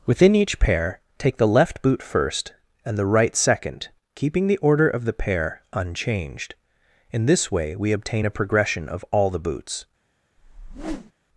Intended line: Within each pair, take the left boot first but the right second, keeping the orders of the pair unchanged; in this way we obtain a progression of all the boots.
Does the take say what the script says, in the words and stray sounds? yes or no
no